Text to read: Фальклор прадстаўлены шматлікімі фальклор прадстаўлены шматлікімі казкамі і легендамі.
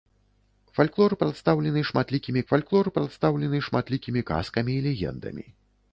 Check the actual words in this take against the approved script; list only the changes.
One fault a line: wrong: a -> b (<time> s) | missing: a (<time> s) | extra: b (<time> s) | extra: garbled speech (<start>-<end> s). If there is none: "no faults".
no faults